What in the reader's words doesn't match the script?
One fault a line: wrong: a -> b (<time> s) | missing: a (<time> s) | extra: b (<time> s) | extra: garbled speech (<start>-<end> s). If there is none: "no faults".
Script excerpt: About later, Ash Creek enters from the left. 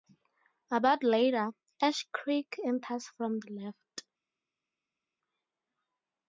no faults